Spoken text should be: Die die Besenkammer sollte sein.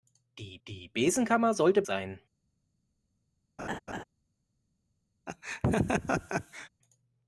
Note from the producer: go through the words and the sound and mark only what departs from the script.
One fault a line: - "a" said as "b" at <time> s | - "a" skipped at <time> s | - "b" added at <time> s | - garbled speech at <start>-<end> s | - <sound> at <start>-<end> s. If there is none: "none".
- laugh at 3.6-4.0 s
- laugh at 5.3-6.7 s